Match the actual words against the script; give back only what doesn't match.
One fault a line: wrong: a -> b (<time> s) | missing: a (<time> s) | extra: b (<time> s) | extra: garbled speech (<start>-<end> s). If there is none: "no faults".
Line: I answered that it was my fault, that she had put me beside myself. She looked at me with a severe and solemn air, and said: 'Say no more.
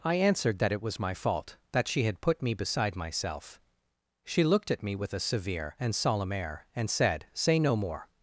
no faults